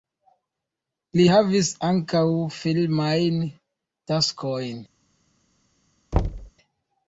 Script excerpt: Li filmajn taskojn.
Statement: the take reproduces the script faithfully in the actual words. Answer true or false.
false